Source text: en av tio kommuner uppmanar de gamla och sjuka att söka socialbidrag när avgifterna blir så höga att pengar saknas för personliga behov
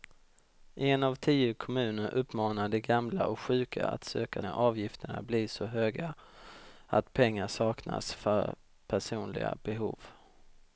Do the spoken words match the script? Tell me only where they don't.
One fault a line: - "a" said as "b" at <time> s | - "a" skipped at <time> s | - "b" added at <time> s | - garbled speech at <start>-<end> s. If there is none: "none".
- "socialbidrag" skipped at 4.4 s